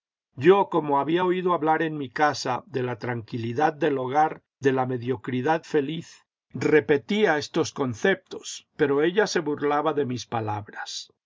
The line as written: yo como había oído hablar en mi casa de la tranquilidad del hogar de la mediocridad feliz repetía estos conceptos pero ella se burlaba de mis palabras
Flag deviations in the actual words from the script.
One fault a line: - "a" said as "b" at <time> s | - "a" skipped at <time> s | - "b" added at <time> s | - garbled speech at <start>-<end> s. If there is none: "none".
none